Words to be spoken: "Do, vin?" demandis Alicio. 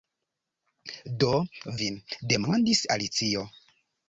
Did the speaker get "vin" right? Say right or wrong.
right